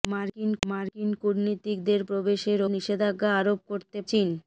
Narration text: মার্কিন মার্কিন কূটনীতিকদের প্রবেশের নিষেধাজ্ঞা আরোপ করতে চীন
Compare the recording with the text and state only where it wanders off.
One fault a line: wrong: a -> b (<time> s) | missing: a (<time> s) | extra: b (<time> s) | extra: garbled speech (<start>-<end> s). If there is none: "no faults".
no faults